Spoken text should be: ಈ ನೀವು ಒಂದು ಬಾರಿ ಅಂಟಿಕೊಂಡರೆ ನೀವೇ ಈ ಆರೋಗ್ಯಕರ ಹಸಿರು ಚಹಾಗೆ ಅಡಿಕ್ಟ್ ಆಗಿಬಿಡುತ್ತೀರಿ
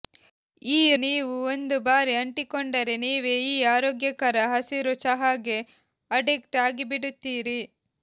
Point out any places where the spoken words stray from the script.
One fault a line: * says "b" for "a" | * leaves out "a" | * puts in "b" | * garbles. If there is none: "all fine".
all fine